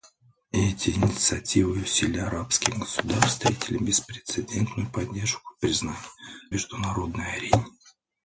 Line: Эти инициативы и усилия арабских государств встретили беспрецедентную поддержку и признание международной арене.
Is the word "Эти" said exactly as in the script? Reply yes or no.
yes